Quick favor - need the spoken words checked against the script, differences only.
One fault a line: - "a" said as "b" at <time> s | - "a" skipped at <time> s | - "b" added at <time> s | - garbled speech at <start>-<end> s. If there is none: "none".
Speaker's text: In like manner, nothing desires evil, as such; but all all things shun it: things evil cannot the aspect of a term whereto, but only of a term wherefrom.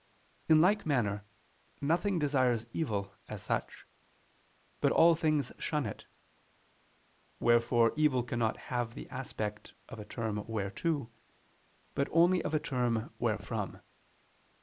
- "all" skipped at 5.1 s
- "things" said as "wherefore" at 7.4 s
- "have" added at 8.7 s